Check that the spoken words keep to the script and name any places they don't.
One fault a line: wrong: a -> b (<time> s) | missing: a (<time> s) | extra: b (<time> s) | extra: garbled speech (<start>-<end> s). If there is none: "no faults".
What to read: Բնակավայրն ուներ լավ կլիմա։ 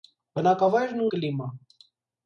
missing: ուներ լավ (1.1 s)